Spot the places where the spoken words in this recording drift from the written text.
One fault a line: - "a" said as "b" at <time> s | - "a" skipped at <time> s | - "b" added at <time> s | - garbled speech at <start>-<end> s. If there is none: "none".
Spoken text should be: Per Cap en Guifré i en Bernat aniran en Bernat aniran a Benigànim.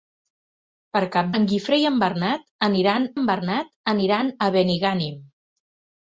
none